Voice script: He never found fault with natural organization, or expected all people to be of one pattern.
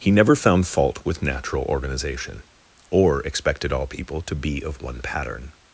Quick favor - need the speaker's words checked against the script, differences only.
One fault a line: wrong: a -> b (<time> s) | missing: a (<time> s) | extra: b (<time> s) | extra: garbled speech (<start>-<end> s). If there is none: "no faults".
no faults